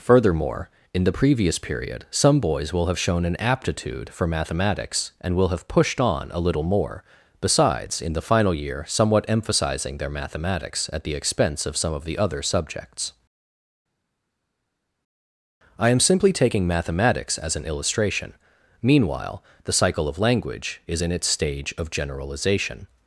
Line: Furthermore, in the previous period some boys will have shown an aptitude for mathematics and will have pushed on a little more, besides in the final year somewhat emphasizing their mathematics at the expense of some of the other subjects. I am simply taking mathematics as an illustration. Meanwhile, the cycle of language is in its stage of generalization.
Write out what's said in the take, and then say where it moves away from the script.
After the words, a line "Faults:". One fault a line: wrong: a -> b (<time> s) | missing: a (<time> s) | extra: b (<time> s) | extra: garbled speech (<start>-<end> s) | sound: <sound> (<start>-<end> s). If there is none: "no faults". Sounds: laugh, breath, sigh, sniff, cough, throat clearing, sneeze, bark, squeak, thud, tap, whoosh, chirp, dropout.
Furthermore, in the previous period some boys will have shown an aptitude for mathematics and will have pushed on a little more, besides in the final year somewhat emphasizing their mathematics at the expense of some of the other subjects. I am simply taking mathematics as an illustration. Meanwhile, the cycle of language is in its stage of generalization.
Faults:
no faults